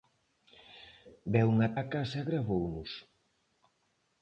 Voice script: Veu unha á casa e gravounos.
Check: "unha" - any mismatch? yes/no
no